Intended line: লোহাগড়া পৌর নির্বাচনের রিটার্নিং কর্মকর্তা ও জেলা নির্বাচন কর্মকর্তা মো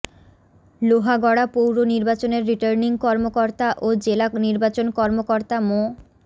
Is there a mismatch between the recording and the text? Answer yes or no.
no